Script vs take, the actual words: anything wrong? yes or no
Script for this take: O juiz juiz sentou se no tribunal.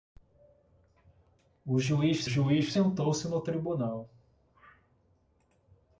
no